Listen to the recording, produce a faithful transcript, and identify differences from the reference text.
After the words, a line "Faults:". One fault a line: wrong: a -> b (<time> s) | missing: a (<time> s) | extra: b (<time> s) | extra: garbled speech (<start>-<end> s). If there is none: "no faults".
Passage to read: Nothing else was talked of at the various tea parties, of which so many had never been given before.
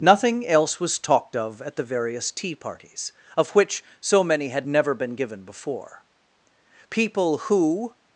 Nothing else was talked of at the various tea parties, of which so many had never been given before. People who
Faults:
extra: People who (6.9 s)